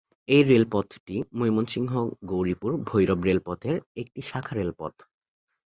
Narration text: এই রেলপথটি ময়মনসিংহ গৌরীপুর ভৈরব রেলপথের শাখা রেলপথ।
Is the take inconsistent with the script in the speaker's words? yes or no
yes